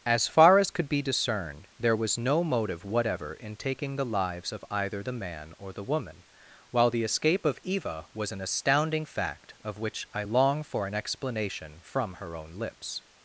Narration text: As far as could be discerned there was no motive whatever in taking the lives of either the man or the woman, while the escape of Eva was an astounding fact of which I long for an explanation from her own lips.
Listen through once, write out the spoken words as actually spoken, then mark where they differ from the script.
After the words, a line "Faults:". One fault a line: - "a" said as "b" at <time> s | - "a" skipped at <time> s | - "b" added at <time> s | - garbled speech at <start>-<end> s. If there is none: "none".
As far as could be discerned there was no motive whatever in taking the lives of either the man or the woman, while the escape of Eva was an astounding fact of which I long for an explanation from her own lips.
Faults:
none